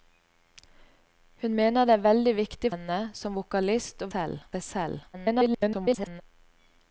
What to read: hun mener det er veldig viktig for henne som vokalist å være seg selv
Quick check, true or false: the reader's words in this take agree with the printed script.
false